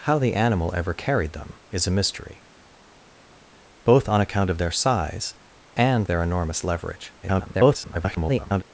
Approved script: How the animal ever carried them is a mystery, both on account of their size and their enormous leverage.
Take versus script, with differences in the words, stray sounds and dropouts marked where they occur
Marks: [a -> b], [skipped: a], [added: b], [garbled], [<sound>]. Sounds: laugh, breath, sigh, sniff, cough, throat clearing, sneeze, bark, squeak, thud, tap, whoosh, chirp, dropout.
How the animal ever carried them is a mystery, both on account of their size and their enormous leverage. [garbled]